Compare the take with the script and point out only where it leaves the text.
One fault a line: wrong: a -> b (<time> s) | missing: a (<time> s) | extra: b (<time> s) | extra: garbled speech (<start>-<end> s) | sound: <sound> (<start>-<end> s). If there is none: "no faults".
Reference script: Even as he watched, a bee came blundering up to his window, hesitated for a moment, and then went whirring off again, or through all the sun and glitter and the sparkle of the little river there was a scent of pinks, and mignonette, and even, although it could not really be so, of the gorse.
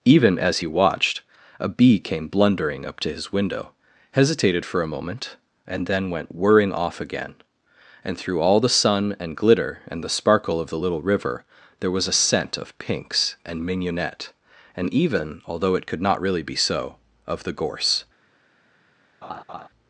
wrong: or -> and (8.0 s)
sound: laugh (19.2-19.7 s)